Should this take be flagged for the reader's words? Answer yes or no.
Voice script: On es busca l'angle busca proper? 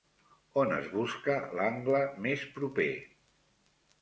yes